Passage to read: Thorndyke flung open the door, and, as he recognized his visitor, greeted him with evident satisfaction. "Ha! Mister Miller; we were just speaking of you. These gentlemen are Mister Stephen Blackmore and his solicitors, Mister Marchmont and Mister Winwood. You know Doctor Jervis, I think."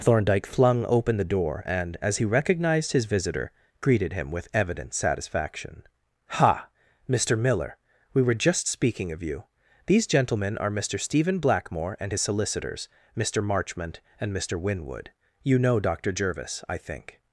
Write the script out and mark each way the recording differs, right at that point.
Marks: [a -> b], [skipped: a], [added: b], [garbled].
Thorndyke flung open the door, and, as he recognized his visitor, greeted him with evident satisfaction. "Ha! Mister Miller; we were just speaking of you. These gentlemen are Mister Stephen Blackmore and his solicitors, Mister Marchmont and Mister Winwood. You know Doctor Jervis, I think."